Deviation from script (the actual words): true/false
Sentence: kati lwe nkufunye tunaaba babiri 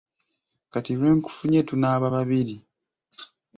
false